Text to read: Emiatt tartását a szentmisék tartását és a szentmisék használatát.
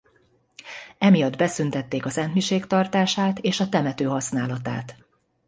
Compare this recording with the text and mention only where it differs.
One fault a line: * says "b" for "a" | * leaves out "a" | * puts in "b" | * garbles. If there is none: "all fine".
* says "beszüntették" for "tartását"
* says "temető" for "szentmisék"